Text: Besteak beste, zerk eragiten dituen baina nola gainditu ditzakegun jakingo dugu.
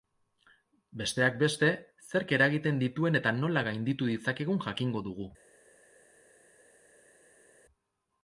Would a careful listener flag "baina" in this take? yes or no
yes